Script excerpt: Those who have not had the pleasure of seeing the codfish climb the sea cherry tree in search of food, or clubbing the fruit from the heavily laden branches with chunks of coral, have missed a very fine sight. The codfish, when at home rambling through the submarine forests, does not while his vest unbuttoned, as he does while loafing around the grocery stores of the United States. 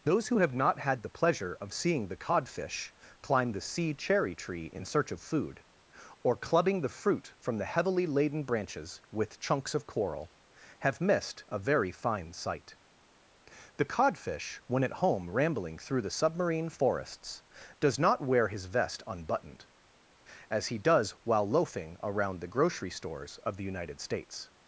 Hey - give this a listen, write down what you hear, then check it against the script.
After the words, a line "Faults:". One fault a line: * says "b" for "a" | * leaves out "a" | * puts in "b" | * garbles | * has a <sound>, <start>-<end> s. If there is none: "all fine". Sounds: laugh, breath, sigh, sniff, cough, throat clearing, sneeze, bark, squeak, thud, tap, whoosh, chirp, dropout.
Those who have not had the pleasure of seeing the codfish climb the sea cherry tree in search of food, or clubbing the fruit from the heavily laden branches with chunks of coral, have missed a very fine sight. The codfish, when at home rambling through the submarine forests, does not wear his vest unbuttoned, as he does while loafing around the grocery stores of the United States.
Faults:
* says "wear" for "while"